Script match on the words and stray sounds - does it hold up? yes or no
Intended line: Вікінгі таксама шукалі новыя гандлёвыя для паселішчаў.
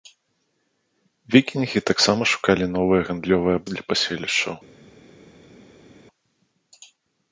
yes